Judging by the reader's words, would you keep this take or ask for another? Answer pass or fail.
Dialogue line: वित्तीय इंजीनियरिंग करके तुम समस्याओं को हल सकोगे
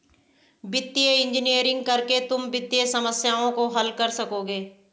fail